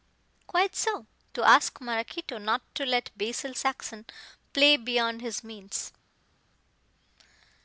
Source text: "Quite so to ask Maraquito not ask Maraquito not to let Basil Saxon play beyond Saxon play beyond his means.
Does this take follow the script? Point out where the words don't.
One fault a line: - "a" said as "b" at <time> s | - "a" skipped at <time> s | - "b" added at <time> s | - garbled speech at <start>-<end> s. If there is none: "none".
- "ask Maraquito not" skipped at 2.6 s
- "Saxon play beyond" skipped at 5.2 s